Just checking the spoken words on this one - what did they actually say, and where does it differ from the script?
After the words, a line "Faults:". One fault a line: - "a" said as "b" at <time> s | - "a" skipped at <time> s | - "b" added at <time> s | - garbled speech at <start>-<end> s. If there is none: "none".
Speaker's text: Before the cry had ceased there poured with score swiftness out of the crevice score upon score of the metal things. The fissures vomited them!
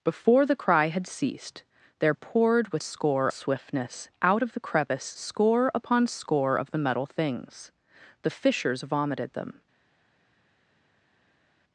Before the cry had ceased there poured with score swiftness out of the crevice score upon score of the metal things. The fissures vomited them!
Faults:
none